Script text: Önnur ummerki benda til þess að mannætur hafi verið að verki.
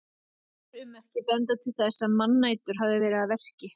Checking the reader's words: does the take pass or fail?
pass